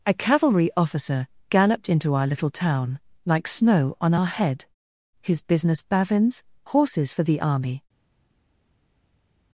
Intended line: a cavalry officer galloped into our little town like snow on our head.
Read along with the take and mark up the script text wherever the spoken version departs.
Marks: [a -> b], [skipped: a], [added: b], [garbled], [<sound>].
a cavalry officer galloped into our little town like snow on our head. [added: His business bavins horses for the army]